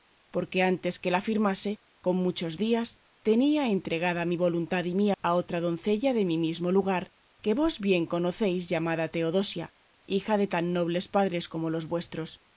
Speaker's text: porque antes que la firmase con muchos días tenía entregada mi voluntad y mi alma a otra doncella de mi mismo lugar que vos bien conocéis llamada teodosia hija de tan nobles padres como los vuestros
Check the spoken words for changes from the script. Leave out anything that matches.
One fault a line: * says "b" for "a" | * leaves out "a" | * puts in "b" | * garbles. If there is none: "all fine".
* leaves out "alma"